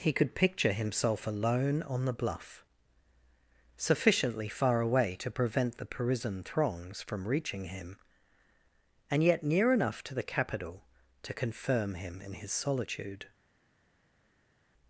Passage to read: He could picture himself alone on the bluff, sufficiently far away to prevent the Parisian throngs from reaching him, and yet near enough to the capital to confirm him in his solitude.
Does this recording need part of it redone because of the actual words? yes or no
no